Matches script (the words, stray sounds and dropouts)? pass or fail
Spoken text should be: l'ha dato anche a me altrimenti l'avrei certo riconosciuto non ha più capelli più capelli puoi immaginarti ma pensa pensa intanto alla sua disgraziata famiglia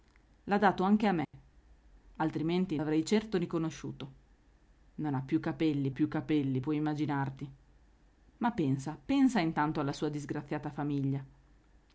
fail